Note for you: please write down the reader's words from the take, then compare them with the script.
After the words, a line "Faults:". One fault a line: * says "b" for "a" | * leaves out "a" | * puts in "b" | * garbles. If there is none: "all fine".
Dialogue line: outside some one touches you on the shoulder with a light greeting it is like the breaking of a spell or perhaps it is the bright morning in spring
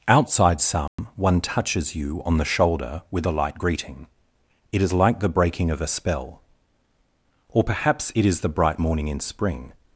outside some one touches you on the shoulder with a light greeting it is like the breaking of a spell or perhaps it is the bright morning in spring
Faults:
all fine